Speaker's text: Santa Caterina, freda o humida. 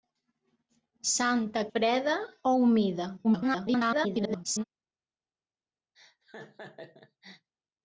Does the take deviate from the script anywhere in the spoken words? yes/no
yes